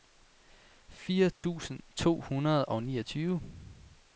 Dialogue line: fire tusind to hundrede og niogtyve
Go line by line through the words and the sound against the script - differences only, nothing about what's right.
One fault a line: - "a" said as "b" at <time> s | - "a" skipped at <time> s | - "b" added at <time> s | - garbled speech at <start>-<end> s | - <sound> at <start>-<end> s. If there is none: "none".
- dropout at 1.3-1.4 s